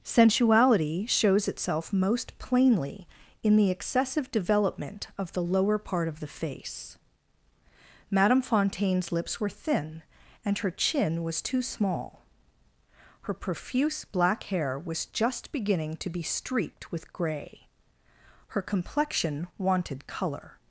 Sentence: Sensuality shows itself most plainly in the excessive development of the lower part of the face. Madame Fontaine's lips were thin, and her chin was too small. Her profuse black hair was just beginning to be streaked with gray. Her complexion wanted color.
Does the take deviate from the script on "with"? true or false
false